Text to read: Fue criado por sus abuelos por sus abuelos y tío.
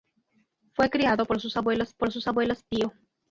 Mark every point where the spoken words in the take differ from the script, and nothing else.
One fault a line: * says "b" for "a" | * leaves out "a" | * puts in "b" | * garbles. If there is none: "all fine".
all fine